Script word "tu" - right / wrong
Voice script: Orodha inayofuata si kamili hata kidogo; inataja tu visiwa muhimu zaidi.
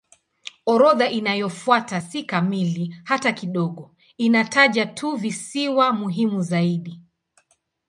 right